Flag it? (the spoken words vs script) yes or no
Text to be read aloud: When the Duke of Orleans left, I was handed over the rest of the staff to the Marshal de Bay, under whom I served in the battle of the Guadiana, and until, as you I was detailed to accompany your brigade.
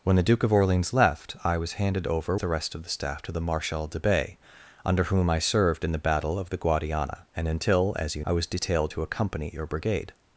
no